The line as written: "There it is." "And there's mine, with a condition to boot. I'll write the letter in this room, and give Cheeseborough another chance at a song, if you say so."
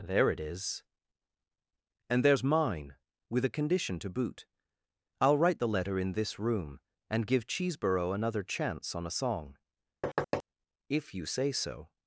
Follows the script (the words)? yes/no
no